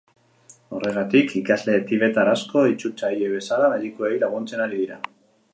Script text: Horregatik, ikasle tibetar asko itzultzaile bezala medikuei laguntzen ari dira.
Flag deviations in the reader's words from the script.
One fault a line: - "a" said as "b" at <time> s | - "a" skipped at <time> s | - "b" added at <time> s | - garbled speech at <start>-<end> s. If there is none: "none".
none